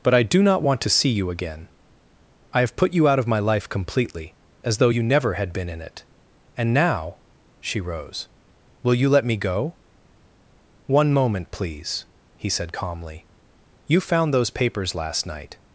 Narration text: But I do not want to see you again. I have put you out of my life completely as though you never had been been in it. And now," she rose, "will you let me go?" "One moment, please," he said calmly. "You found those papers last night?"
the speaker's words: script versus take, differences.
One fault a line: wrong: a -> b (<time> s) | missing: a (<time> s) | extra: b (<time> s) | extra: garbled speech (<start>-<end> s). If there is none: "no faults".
missing: been (5.7 s)